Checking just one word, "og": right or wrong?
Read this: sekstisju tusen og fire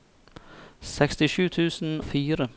wrong